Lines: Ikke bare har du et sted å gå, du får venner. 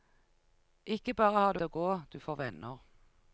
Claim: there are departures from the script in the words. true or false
true